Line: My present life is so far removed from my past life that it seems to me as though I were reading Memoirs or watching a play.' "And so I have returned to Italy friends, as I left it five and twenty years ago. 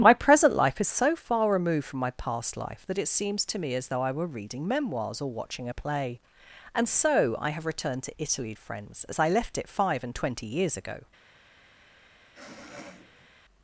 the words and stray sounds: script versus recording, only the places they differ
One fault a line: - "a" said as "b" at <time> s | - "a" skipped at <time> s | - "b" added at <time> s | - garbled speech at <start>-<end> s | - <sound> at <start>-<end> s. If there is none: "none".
- sniff at 12.3-13.3 s